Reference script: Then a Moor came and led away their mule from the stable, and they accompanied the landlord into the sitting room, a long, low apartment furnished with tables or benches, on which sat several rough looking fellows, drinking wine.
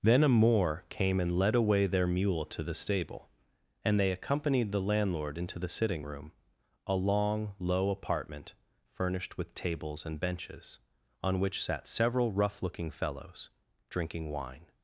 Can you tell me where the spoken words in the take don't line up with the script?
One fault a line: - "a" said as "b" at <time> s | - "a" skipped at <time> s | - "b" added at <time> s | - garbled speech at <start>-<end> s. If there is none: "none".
- "from" said as "to" at 2.5 s
- "or" said as "and" at 10.1 s